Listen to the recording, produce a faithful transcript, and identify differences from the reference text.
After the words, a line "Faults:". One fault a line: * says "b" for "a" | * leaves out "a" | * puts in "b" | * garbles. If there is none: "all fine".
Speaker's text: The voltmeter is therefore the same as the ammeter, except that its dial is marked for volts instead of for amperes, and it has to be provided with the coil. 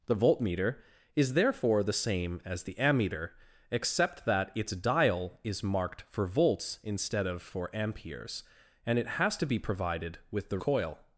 The voltmeter is therefore the same as the ammeter, except that its dial is marked for volts instead of for amperes, and it has to be provided with the coil.
Faults:
all fine